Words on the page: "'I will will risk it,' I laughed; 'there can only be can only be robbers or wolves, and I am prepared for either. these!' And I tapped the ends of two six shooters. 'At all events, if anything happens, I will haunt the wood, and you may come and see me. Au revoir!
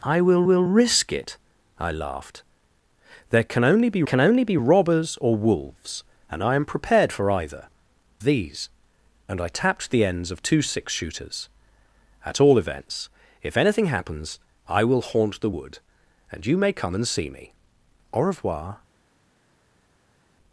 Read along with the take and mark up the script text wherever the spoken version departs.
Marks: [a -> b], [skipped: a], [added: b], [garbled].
"'I will will risk it,' I laughed; 'there can only be can only be robbers or wolves, and I am prepared for either. these!' And I tapped the ends of two six shooters. 'At all events, if anything happens, I will haunt the wood, and you may come and see me. Au revoir!